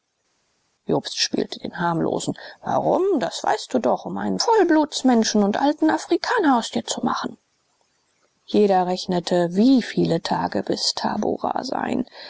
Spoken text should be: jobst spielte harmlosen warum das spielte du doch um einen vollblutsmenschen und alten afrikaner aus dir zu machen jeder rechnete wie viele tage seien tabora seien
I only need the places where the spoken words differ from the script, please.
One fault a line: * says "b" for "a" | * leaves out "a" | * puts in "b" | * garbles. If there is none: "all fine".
* puts in "den"
* says "weißt" for "spielte"
* says "bis" for "seien"